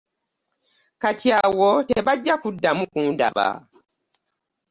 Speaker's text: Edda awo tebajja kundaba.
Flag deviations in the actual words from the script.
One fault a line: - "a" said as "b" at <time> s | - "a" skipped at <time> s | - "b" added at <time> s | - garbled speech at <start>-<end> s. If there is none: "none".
- "Edda" said as "Kati" at 1.0 s
- "kuddamu" added at 2.4 s